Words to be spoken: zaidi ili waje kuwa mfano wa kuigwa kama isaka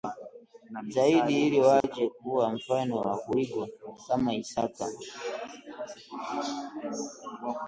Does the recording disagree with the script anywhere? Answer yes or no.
no